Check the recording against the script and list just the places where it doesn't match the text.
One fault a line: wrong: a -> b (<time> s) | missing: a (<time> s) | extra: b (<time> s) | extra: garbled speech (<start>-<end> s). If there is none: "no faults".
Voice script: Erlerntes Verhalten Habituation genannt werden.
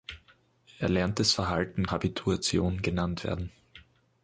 no faults